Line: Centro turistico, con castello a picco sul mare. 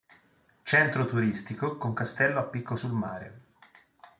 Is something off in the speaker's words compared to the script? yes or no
no